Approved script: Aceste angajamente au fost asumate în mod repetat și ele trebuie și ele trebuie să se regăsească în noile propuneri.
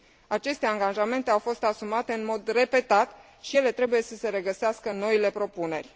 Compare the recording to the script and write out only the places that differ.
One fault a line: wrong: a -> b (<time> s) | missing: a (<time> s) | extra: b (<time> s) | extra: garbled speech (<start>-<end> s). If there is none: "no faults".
missing: și ele trebuie (4.0 s)